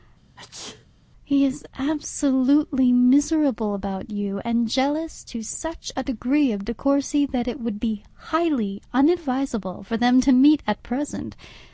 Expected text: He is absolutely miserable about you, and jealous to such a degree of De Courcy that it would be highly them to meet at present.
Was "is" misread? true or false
false